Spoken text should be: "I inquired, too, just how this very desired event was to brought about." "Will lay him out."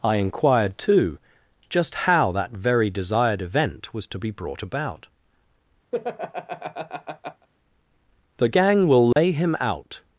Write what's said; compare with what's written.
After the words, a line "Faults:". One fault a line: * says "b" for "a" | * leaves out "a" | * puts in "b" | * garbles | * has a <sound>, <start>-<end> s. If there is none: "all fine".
"I inquired, too, just how that very desired event was to be brought about." "The gang will lay him out."
Faults:
* says "that" for "this"
* puts in "be"
* has a laugh, 5.9-7.5 s
* puts in "The gang"
* has a dropout, 9.1-9.2 s